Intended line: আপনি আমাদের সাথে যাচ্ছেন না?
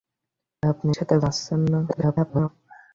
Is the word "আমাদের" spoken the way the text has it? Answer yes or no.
no